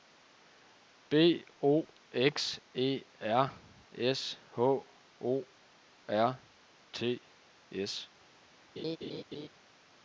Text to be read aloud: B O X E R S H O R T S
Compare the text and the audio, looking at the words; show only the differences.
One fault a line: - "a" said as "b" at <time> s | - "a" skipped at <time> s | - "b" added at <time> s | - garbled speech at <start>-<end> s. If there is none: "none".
none